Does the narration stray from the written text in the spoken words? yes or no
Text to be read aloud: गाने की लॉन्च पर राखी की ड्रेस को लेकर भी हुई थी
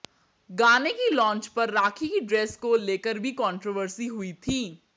yes